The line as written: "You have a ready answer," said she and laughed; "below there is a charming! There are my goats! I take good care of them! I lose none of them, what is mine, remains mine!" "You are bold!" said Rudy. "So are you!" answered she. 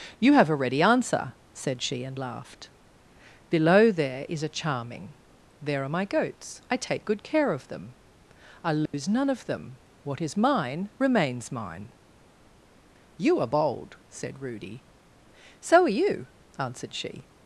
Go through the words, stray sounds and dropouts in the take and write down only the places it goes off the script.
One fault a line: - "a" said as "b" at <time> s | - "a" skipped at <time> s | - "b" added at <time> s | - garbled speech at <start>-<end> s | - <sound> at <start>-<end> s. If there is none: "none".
- dropout at 8.9-8.9 s